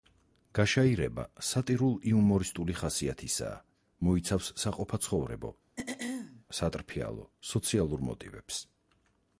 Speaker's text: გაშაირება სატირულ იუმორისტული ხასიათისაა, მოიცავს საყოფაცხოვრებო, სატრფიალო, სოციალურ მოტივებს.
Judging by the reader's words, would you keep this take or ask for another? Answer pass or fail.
pass